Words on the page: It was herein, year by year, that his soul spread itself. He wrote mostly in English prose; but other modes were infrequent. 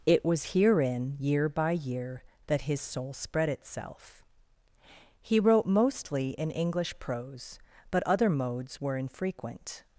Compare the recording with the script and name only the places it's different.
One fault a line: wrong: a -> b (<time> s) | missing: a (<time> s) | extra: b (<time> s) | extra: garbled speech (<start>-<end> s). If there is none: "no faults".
no faults